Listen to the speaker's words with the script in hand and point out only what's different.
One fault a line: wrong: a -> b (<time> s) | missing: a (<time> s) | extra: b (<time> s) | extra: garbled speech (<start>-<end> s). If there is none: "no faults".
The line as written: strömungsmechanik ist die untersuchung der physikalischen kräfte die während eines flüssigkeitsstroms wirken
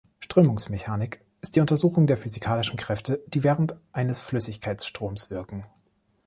no faults